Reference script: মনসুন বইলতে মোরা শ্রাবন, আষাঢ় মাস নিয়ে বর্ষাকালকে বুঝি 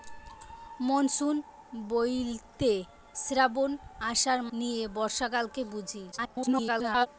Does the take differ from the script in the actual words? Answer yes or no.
yes